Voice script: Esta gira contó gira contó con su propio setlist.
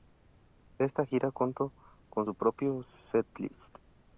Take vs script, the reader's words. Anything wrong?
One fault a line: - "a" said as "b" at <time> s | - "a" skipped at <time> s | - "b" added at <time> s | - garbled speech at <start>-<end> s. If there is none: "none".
- "gira contó" skipped at 1.7 s